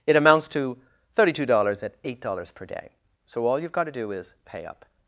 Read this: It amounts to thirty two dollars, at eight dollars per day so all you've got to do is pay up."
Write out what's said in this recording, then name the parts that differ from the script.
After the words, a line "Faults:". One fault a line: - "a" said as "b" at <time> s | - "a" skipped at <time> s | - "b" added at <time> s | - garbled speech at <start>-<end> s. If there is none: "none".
It amounts to thirty two dollars, at eight dollars per day so all you've got to do is pay up."
Faults:
none